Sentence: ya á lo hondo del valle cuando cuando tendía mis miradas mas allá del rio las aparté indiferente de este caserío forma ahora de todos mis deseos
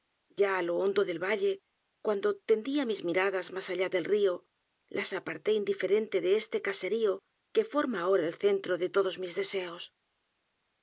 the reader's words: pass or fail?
fail